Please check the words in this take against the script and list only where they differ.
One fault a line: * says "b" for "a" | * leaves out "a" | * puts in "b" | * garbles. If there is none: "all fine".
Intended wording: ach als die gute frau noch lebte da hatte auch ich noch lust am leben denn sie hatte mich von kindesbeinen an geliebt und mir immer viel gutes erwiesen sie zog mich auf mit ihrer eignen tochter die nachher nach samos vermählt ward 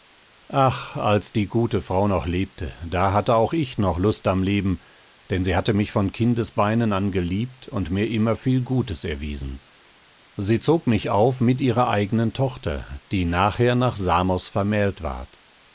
all fine